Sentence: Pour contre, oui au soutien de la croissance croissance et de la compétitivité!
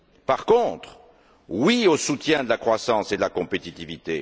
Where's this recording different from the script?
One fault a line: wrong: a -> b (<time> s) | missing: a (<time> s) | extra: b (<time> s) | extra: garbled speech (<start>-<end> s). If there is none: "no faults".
wrong: Pour -> Par (0.2 s)
missing: croissance (3.1 s)